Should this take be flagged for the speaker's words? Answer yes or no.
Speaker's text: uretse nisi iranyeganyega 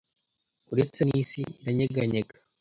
no